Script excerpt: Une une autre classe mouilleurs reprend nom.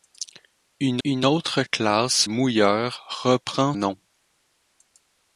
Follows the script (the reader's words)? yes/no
yes